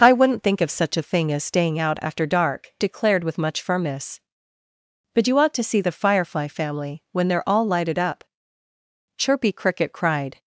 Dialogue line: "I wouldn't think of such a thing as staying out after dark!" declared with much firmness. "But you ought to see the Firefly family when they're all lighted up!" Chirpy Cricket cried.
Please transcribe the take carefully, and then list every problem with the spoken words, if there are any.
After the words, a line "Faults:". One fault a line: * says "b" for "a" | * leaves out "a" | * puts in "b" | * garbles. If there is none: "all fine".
"I wouldn't think of such a thing as staying out after dark!" declared with much firmness. "But you ought to see the Firefly family when they're all lighted up!" Chirpy Cricket cried.
Faults:
all fine